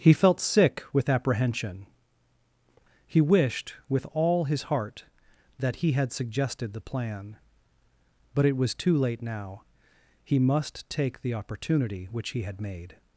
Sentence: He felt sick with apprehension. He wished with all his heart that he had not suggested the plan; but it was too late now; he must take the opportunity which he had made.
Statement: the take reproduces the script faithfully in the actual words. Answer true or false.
false